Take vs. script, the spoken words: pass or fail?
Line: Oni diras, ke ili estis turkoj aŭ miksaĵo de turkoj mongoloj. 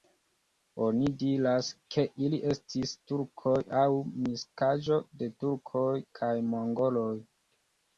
fail